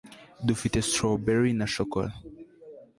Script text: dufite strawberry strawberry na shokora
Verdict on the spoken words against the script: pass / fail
fail